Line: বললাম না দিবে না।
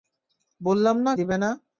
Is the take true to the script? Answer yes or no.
yes